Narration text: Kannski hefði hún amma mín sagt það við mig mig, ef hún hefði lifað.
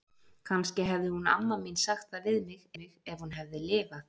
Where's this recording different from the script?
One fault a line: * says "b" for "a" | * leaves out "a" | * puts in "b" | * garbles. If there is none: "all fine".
all fine